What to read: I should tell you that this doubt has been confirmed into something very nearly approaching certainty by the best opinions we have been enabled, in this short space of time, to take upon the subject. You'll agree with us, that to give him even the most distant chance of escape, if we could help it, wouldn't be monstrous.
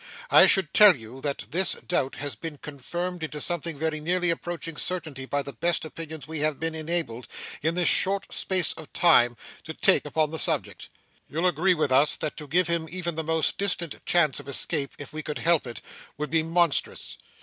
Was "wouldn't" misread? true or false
true